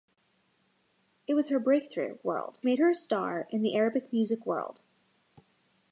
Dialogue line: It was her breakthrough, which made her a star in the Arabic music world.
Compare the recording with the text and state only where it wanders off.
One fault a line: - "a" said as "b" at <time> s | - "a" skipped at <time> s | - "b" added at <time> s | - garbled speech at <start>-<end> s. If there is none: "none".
- "which" said as "world" at 2.2 s